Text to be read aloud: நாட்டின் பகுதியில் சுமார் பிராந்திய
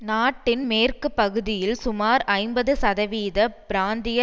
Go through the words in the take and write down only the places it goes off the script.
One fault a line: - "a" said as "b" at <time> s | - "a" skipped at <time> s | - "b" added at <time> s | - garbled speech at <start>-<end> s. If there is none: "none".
- "மேற்கு" added at 0.7 s
- "ஐம்பது சதவீத" added at 2.3 s